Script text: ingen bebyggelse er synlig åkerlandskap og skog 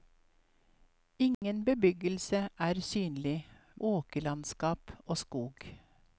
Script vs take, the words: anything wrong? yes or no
no